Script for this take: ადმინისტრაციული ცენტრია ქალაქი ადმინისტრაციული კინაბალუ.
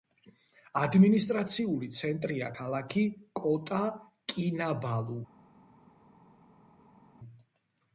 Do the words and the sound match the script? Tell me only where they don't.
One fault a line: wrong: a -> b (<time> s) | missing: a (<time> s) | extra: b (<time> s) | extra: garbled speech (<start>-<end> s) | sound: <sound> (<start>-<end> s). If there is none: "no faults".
wrong: ადმინისტრაციული -> კოტა (3.4 s)